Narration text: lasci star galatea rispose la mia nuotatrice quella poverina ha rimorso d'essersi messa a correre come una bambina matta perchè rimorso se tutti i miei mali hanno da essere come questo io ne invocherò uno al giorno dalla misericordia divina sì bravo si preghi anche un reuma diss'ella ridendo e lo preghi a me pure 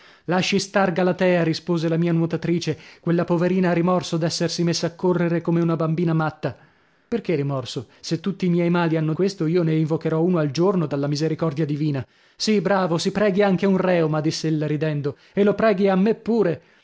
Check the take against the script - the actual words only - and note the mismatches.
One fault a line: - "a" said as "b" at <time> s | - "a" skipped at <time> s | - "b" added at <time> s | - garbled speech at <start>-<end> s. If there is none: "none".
- "da essere come" skipped at 9.1 s